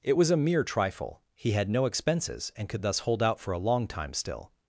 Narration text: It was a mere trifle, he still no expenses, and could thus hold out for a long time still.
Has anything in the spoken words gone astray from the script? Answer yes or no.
yes